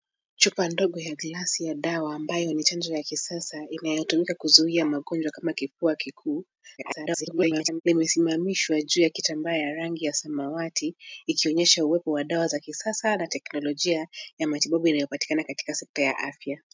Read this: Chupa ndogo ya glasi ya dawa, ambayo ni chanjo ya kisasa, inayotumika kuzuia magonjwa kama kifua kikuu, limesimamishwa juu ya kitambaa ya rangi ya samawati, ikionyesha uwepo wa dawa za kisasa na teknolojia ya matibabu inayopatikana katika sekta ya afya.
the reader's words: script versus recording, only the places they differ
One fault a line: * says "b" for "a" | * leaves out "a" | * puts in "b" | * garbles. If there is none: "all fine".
* garbles